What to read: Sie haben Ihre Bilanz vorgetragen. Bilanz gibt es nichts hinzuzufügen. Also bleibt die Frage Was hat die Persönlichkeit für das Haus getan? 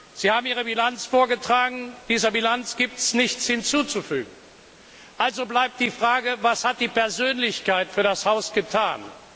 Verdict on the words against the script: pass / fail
fail